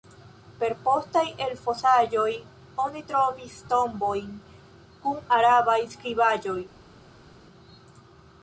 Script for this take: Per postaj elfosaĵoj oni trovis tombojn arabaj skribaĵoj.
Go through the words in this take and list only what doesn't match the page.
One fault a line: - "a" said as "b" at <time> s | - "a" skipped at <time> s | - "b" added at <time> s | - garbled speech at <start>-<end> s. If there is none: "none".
- "kun" added at 5.1 s